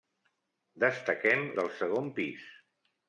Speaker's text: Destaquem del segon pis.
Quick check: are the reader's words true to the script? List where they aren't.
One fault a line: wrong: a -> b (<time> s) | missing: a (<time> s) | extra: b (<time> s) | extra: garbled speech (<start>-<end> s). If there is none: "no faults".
no faults